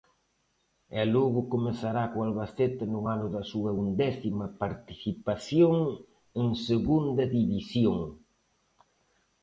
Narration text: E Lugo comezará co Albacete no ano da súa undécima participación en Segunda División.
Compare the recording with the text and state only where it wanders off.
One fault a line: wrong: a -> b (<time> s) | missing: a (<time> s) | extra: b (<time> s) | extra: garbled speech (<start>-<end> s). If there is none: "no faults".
no faults